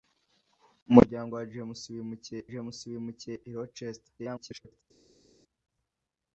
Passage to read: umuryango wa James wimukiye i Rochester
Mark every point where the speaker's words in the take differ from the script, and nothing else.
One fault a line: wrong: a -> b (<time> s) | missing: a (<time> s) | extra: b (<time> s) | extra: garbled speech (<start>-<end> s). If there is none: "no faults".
extra: James wimukiye (2.5 s)
extra: garbled speech (4.2-4.8 s)